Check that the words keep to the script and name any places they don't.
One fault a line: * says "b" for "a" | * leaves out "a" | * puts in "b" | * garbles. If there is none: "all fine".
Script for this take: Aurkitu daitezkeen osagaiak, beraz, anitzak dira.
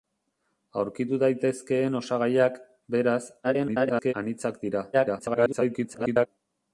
* garbles
* garbles